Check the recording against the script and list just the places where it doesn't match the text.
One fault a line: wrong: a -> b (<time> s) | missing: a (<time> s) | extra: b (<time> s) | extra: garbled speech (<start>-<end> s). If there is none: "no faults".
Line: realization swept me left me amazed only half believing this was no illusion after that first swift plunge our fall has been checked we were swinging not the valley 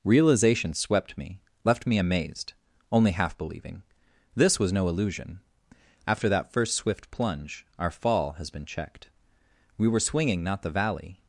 no faults